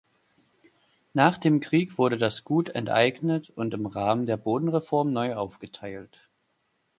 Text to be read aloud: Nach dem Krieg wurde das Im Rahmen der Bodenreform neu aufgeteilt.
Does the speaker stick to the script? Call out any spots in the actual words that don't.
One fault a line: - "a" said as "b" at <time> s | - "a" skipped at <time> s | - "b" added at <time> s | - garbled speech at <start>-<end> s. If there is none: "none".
- "Gut enteignet und" added at 2.4 s